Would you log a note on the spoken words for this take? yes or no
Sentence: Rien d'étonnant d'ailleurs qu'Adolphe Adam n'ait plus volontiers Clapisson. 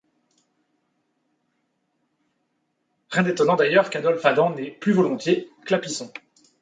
no